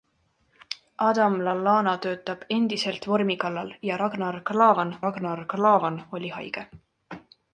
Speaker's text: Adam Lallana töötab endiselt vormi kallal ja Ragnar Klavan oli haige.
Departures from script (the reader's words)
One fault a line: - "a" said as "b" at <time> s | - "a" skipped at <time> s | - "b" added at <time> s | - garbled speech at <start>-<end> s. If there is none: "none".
- "Ragnar Klavan" added at 5.1 s